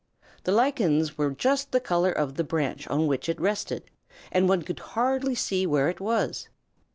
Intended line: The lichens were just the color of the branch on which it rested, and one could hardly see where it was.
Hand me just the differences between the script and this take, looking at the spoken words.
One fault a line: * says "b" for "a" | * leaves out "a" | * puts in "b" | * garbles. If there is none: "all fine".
all fine